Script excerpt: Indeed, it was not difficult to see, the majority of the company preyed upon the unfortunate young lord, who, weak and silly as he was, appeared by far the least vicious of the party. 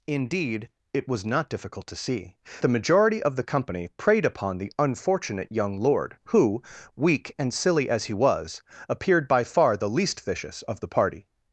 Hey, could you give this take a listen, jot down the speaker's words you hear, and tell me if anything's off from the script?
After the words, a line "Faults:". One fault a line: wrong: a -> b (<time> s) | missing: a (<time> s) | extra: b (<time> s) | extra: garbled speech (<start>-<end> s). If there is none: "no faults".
Indeed, it was not difficult to see, the majority of the company preyed upon the unfortunate young lord, who, weak and silly as he was, appeared by far the least vicious of the party.
Faults:
no faults